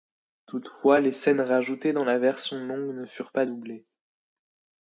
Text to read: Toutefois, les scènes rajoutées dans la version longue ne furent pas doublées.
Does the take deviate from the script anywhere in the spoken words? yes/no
no